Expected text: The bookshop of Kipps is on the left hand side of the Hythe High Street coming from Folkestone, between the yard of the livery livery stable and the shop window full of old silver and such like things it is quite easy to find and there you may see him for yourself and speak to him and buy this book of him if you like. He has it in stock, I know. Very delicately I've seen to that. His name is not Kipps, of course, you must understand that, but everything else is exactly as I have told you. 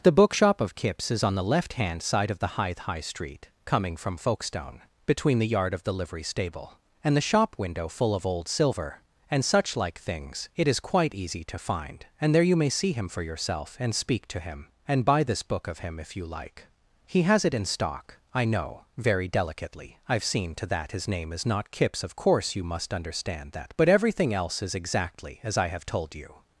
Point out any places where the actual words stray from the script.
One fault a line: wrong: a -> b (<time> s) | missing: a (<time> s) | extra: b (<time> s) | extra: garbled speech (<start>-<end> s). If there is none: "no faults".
missing: livery (6.2 s)